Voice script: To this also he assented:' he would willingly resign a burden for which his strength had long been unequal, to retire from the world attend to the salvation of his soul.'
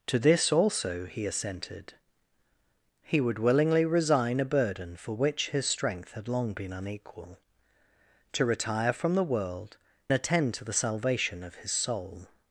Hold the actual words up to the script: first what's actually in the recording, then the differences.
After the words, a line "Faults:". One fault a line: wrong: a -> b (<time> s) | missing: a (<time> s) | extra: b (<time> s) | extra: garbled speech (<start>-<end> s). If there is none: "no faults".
To this also he assented:' he would willingly resign a burden for which his strength had long been unequal, to retire from the world attend to the salvation of his soul.'
Faults:
no faults